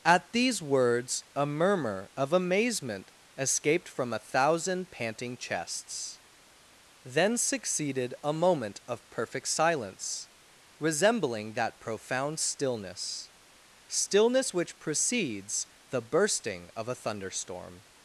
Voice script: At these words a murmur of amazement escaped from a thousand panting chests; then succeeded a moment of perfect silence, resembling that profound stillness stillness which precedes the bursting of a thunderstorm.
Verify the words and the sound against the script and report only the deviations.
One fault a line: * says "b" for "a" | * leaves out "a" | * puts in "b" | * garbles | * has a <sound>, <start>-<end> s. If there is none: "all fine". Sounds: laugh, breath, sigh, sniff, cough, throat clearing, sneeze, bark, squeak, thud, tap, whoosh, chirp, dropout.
all fine